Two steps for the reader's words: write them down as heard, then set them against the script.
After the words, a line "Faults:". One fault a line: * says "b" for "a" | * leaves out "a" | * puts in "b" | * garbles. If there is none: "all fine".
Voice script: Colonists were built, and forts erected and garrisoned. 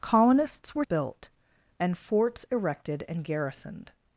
Colonists were built, and forts erected and garrisoned.
Faults:
all fine